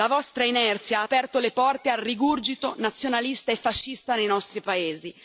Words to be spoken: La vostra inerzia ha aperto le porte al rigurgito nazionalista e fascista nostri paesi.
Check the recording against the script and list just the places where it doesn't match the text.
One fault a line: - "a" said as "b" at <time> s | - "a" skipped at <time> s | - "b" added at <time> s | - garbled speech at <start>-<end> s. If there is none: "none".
- "nei" added at 4.1 s